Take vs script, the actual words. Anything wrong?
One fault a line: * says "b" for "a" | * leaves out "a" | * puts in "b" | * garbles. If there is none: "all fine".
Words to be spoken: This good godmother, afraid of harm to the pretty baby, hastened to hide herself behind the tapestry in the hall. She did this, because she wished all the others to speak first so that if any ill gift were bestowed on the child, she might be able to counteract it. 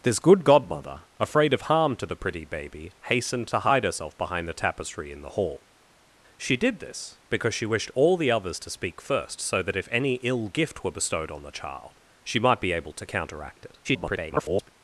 * garbles